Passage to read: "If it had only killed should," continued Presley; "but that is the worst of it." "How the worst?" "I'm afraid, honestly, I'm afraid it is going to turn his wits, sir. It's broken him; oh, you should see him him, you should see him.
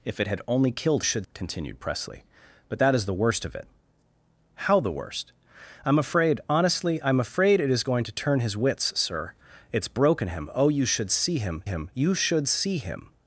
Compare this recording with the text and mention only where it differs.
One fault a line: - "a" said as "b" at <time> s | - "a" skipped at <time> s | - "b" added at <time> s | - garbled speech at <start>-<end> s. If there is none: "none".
none